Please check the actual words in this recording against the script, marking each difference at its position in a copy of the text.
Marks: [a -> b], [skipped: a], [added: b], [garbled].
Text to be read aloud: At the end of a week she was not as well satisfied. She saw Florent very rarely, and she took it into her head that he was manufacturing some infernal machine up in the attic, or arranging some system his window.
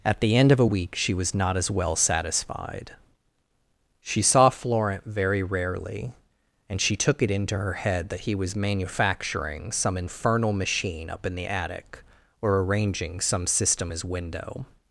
At the end of a week she was not as well satisfied. She saw Florent very rarely, and she took it into her head that he was manufacturing some infernal machine up in the attic, or arranging some system his window.